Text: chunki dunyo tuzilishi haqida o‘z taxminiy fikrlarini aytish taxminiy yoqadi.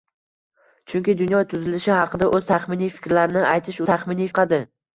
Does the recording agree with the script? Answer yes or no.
yes